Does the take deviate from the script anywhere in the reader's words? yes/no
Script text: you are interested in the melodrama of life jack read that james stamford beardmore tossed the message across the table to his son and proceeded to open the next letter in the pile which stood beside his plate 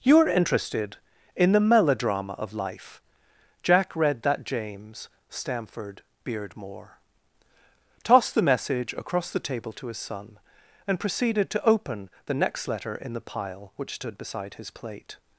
no